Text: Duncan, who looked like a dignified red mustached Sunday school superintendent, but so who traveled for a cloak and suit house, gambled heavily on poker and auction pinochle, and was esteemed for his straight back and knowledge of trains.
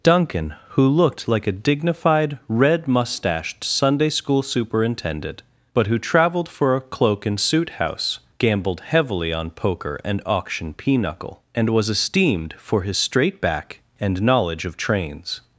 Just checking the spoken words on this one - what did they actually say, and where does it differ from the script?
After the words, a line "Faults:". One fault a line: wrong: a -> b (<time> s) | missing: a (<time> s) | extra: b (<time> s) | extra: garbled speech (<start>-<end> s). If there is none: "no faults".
Duncan, who looked like a dignified red mustached Sunday school superintendent, but who traveled for a cloak and suit house, gambled heavily on poker and auction pinochle, and was esteemed for his straight back and knowledge of trains.
Faults:
missing: so (5.8 s)